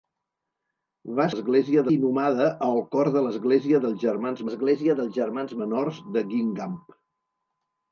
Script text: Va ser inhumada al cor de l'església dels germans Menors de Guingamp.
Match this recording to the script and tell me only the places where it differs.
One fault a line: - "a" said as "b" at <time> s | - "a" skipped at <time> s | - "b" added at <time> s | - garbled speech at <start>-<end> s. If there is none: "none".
- "ser" said as "l'església" at 1.3 s
- "l'església dels germans" added at 4.5 s